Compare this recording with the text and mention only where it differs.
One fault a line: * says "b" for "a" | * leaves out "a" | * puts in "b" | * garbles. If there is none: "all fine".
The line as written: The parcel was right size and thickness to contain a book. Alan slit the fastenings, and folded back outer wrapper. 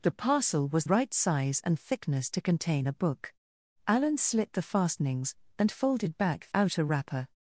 all fine